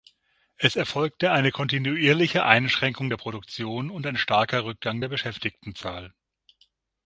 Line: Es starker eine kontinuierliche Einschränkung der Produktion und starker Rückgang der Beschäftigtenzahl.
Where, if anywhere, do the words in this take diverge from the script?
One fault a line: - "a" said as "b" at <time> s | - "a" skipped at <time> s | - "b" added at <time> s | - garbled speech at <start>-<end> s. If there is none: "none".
- "starker" said as "erfolgte" at 0.8 s
- "ein" added at 4.0 s